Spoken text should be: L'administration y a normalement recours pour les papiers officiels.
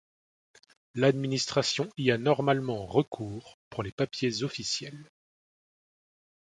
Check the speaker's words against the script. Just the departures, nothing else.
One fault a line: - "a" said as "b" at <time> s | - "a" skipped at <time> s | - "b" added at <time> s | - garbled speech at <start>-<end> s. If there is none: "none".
none